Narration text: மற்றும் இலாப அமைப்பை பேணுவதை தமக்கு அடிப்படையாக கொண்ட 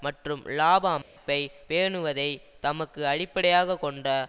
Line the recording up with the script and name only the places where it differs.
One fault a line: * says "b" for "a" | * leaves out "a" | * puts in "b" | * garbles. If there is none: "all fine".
all fine